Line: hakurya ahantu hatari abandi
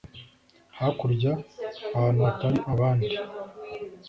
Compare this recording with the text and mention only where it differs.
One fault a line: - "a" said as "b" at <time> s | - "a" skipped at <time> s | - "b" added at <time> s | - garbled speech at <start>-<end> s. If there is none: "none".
none